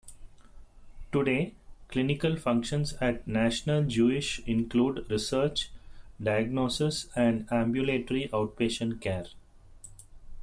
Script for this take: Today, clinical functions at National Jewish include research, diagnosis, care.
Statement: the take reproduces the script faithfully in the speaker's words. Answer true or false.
false